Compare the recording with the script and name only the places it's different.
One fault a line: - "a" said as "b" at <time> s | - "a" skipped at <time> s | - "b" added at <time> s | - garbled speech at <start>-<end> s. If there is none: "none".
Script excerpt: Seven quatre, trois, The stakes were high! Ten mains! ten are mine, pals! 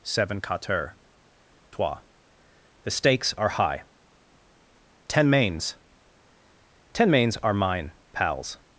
- "were" said as "are" at 3.4 s
- "mains" added at 7.1 s